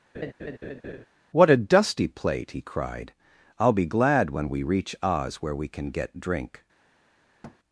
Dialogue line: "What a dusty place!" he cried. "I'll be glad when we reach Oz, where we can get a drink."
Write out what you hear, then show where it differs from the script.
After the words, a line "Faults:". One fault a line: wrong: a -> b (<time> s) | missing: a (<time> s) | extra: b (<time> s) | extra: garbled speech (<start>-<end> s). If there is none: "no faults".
"What a dusty plate!" he cried. "I'll be glad when we reach Oz, where we can get drink."
Faults:
wrong: place -> plate (2.1 s)
missing: a (6.2 s)